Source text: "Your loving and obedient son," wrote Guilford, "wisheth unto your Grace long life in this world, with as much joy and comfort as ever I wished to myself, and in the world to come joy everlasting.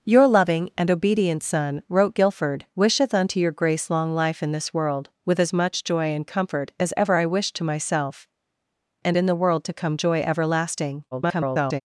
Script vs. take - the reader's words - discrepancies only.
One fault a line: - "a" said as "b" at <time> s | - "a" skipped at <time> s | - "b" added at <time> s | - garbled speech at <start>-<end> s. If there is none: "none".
- garbled speech at 11.1-11.8 s